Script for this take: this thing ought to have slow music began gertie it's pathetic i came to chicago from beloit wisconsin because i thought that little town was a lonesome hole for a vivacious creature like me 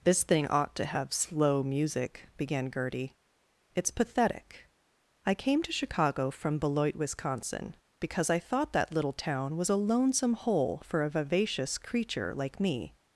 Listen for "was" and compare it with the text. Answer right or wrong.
right